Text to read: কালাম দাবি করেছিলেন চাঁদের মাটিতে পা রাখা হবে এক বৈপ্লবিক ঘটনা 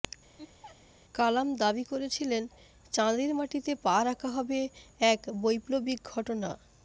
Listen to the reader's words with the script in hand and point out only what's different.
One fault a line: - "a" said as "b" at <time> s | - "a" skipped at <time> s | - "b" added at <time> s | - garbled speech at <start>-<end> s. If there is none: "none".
none